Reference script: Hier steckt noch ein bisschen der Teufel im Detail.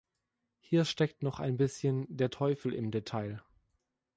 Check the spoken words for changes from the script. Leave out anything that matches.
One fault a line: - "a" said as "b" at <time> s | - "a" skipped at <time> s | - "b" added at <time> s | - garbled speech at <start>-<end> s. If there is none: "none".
none